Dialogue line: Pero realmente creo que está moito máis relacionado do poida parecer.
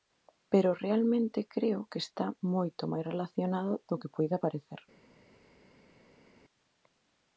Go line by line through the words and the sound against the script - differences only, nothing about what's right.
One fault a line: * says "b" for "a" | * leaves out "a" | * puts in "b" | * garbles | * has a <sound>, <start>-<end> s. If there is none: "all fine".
* puts in "que"